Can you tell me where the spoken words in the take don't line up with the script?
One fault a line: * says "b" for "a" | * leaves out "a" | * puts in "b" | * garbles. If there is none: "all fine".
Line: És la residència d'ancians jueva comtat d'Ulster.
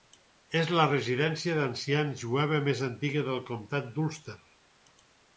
* puts in "més antiga del"